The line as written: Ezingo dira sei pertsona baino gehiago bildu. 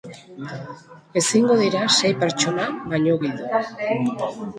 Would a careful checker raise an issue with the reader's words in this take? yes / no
yes